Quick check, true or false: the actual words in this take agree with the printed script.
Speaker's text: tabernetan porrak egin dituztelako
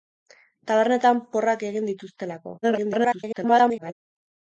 false